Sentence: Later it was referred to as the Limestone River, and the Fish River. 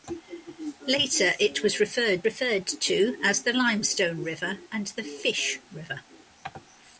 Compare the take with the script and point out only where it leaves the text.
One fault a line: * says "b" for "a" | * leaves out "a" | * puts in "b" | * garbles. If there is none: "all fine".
* puts in "referred"